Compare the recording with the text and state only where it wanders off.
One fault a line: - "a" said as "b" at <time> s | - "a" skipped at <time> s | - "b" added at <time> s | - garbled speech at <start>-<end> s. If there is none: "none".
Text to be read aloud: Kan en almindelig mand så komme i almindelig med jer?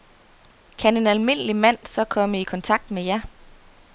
- "almindelig" said as "kontakt" at 2.4 s